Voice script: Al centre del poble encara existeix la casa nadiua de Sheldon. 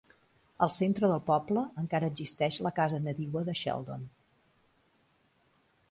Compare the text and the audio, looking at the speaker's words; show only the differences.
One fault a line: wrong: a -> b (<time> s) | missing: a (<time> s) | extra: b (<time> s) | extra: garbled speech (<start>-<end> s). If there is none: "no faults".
no faults